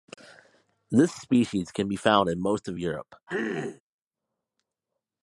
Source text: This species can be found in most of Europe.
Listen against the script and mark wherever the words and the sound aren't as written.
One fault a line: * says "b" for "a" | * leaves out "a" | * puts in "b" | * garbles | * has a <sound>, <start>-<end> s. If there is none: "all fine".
* has a throat clearing, 3.3-3.8 s